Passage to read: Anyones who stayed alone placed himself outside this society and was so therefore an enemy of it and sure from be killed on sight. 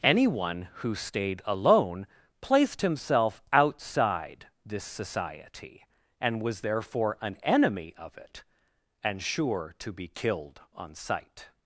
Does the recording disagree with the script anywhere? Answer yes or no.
yes